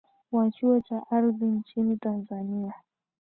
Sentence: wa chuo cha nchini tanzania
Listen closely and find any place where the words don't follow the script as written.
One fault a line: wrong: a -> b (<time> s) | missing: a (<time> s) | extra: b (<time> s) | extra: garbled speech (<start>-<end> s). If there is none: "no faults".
extra: ardhi (1.1 s)